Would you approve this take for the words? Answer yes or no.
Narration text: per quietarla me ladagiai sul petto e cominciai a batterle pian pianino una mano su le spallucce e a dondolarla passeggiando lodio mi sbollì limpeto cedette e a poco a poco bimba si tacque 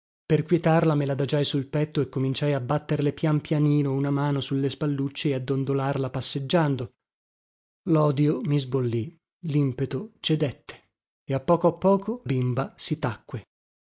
yes